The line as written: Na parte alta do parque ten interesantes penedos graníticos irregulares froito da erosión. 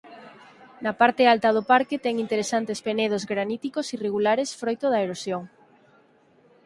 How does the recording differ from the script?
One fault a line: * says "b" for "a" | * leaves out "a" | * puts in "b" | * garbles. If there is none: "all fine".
all fine